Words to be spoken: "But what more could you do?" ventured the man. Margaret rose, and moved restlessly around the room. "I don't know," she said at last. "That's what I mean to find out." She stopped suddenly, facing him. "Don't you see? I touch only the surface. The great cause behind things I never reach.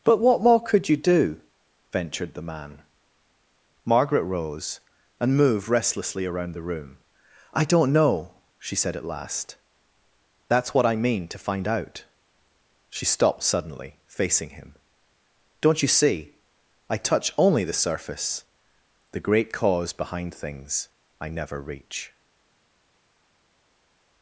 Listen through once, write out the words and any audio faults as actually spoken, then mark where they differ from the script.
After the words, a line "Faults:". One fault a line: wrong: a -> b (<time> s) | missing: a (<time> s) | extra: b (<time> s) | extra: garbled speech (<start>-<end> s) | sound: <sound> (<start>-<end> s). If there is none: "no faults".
"But what more could you do?" ventured the man. Margaret rose, and moved restlessly around the room. "I don't know," she said at last. "That's what I mean to find out." She stopped suddenly, facing him. "Don't you see? I touch only the surface. The great cause behind things I never reach.
Faults:
no faults